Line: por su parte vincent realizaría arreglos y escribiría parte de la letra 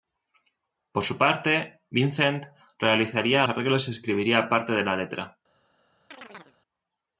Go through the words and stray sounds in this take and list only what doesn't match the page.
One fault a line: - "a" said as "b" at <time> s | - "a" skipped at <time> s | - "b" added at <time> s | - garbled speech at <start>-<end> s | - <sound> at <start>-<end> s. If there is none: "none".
- chirp at 6.1-6.6 s